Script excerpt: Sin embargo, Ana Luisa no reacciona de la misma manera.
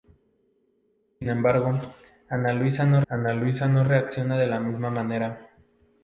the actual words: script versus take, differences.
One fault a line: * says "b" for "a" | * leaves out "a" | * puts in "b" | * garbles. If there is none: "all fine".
* puts in "Ana Luisa no"